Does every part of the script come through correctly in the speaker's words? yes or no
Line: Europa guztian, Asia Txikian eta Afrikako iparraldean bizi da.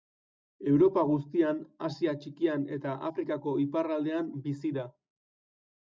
yes